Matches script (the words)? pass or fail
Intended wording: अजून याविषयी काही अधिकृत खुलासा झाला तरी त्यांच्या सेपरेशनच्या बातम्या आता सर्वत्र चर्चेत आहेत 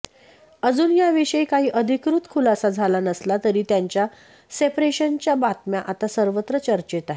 fail